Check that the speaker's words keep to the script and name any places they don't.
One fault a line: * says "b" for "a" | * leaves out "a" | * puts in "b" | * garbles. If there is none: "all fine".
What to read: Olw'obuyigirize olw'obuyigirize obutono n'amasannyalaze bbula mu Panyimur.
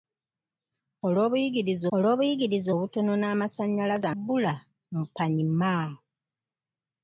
all fine